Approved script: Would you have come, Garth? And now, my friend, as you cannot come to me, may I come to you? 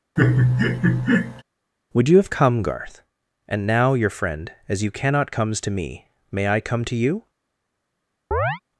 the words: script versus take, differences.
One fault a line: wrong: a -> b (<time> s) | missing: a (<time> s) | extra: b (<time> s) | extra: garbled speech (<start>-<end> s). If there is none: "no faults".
wrong: my -> your (3.9 s)
wrong: come -> comes (5.3 s)